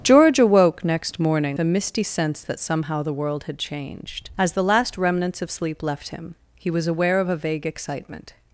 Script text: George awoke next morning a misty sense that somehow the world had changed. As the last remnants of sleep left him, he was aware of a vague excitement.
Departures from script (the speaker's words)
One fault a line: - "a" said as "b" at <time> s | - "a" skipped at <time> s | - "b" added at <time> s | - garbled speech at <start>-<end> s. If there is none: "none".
none